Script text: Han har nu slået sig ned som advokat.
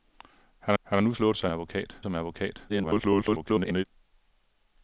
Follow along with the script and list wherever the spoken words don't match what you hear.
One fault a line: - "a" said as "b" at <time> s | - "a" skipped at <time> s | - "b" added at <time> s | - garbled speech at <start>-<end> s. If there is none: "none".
- "han" added at 0.8 s
- "ned" said as "advokat" at 1.5 s
- garbled speech at 2.7-3.8 s